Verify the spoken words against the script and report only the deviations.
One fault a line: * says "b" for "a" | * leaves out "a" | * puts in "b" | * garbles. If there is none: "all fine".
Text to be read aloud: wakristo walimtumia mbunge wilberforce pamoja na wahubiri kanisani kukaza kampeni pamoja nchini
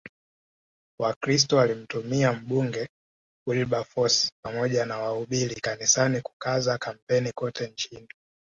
* says "kote" for "pamoja"